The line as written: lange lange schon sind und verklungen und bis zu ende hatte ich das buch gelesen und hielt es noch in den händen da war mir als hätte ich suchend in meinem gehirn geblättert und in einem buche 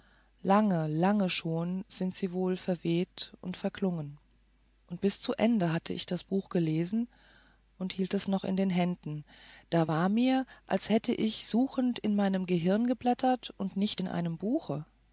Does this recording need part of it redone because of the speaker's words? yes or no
yes